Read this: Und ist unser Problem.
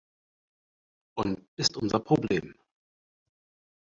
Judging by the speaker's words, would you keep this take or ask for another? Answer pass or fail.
pass